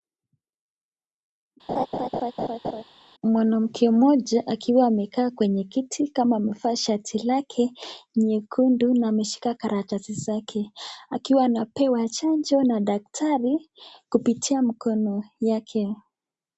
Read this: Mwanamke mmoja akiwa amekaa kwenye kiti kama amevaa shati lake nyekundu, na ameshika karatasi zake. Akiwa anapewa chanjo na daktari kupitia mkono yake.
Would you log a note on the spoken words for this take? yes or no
no